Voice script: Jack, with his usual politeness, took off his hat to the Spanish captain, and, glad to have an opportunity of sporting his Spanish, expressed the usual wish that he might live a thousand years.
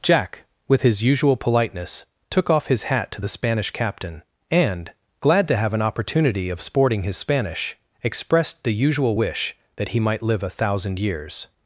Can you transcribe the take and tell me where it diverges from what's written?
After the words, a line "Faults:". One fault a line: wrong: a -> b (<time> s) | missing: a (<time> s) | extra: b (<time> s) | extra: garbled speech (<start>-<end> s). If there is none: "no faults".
Jack, with his usual politeness, took off his hat to the Spanish captain, and, glad to have an opportunity of sporting his Spanish, expressed the usual wish that he might live a thousand years.
Faults:
no faults